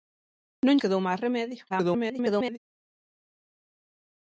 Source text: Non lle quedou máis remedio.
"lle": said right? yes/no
no